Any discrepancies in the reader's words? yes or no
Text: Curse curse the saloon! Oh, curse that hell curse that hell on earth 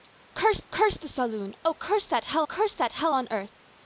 no